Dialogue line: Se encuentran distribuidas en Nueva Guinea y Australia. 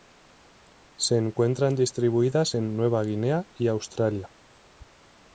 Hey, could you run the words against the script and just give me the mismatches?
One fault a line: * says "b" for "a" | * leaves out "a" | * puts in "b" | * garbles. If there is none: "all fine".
all fine